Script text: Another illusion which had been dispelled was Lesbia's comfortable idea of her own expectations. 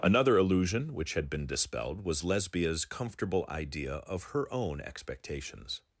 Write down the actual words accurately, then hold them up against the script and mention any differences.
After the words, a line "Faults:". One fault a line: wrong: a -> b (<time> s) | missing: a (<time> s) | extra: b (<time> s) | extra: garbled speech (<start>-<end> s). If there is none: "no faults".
Another illusion which had been dispelled was Lesbia's comfortable idea of her own expectations.
Faults:
no faults